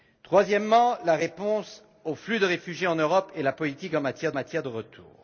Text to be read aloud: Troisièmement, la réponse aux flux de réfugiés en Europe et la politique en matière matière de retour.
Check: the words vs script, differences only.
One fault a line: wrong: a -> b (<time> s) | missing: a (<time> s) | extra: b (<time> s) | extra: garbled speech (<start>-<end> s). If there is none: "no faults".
no faults